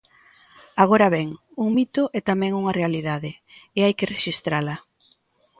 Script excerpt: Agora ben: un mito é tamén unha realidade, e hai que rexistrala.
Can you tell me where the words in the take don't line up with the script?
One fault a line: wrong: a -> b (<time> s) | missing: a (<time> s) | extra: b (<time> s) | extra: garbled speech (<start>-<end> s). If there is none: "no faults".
no faults